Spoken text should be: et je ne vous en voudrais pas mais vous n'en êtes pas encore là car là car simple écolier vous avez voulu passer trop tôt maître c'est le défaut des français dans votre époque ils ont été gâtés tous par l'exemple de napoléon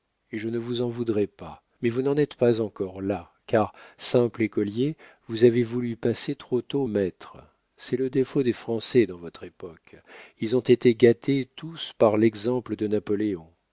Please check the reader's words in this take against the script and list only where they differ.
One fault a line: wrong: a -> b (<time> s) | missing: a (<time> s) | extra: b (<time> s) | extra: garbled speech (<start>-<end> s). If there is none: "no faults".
missing: là car (3.7 s)